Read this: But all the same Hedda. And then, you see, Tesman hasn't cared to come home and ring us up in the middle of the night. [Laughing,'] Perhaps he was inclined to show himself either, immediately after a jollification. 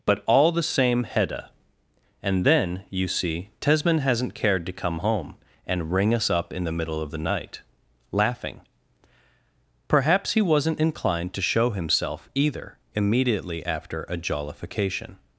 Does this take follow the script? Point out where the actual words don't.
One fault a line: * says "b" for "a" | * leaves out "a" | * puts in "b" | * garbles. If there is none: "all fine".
* says "wasn't" for "was"